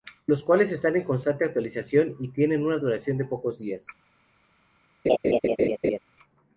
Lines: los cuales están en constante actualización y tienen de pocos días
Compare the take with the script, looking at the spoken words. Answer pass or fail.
fail